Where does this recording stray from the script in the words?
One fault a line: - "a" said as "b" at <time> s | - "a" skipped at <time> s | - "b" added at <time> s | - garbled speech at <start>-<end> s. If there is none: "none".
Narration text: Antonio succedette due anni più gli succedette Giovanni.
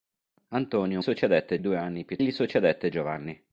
none